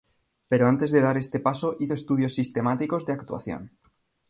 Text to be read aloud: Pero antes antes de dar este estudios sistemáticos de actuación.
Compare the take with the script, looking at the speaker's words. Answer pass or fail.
fail